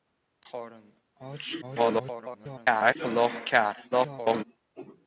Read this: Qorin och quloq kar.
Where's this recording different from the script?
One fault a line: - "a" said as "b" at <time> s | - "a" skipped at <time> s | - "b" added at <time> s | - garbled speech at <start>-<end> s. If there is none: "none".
- garbled speech at 1.6-3.0 s
- garbled speech at 3.9-4.4 s